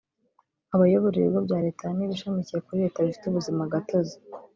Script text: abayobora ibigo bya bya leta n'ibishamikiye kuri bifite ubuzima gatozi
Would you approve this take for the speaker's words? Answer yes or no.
no